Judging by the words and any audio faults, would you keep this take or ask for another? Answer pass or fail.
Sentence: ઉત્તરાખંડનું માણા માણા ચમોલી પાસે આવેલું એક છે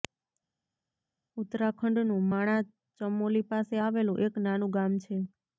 fail